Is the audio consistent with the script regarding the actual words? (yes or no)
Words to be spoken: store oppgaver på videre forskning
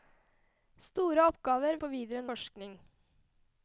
yes